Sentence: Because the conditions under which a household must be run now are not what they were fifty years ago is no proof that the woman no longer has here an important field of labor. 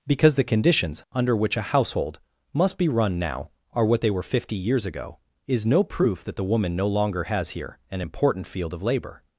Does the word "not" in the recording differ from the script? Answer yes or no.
yes